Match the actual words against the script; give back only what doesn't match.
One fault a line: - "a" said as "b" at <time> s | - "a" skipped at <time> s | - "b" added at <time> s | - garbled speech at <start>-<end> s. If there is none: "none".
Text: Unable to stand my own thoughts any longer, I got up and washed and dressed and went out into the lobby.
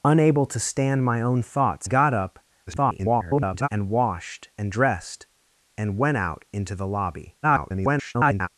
- "any longer I" skipped at 1.9 s
- garbled speech at 2.7-3.7 s
- garbled speech at 7.4-8.5 s